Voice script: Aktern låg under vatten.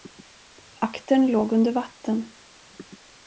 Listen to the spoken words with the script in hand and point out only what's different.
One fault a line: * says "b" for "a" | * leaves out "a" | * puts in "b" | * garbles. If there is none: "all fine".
all fine